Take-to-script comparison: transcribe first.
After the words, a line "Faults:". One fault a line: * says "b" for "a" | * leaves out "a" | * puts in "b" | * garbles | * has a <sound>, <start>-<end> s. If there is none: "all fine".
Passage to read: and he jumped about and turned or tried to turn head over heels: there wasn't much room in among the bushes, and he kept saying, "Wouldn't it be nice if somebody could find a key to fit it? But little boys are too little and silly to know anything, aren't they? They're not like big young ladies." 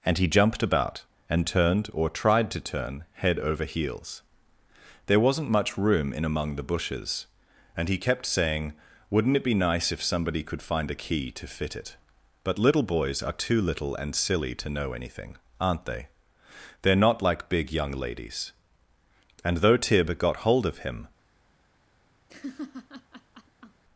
and he jumped about and turned or tried to turn head over heels: there wasn't much room in among the bushes, and he kept saying, "Wouldn't it be nice if somebody could find a key to fit it? But little boys are too little and silly to know anything, aren't they? They're not like big young ladies." And though Tib got hold of him
Faults:
* puts in "And though Tib got hold of him"
* has a laugh, 22.3-23.8 s